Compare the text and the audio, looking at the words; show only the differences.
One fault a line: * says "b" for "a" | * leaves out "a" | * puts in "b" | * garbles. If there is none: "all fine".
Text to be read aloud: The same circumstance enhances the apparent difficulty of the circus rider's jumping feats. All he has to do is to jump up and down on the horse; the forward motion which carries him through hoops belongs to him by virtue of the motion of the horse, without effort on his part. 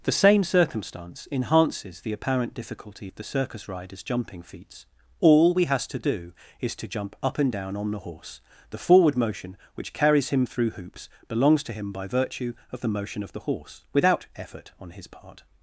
* says "we" for "he"